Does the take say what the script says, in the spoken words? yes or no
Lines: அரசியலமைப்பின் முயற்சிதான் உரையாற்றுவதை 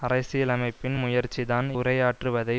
yes